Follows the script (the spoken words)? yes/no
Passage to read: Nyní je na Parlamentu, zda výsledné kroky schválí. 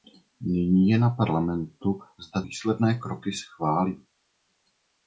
yes